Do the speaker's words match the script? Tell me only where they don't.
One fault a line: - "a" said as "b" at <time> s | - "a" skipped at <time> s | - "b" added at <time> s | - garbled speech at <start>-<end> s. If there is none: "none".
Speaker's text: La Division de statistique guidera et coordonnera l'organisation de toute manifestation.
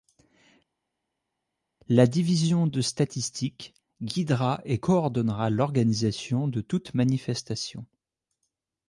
none